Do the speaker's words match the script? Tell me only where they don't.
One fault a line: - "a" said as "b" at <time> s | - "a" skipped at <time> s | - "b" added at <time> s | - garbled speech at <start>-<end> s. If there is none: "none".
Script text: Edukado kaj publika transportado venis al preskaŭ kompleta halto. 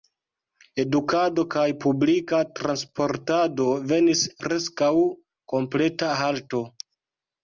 - "al" skipped at 4.2 s